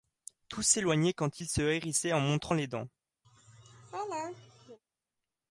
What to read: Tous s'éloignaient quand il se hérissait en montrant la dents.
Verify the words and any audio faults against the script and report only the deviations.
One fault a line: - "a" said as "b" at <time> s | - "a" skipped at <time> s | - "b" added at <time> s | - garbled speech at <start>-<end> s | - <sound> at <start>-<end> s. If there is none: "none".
- "la" said as "les" at 2.5 s
- laugh at 3.2-4.8 s